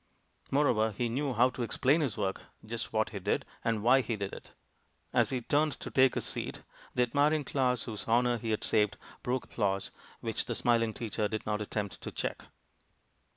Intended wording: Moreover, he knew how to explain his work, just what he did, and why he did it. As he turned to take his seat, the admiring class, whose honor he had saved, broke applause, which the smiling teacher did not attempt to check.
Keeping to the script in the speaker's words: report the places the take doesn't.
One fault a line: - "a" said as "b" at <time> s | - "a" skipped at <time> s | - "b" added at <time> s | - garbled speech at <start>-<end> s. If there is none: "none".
none